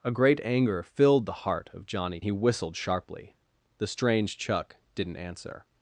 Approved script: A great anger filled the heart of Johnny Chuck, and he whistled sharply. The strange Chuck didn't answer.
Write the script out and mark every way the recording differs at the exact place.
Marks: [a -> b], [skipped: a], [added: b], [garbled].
A great anger filled the heart of Johnny [skipped: Chuck, and] he whistled sharply. The strange Chuck didn't answer.